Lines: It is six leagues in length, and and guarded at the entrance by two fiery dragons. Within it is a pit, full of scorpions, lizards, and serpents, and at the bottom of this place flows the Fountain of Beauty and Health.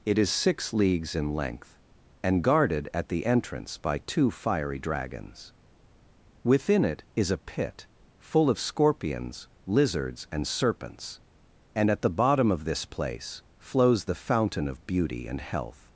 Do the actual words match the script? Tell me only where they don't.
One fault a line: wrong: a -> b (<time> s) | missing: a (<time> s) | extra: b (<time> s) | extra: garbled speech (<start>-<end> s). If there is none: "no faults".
missing: and (2.4 s)